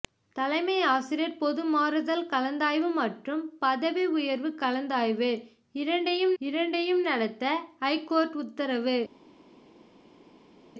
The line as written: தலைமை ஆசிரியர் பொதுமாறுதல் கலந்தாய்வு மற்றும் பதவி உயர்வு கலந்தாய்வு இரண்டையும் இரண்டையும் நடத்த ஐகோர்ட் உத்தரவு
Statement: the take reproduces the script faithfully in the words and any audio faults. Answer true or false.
true